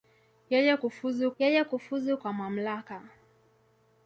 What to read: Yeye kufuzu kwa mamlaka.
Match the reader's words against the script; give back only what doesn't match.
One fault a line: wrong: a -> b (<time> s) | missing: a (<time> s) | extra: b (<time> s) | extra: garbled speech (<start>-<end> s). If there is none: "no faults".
extra: yeye kufuzu (1.4 s)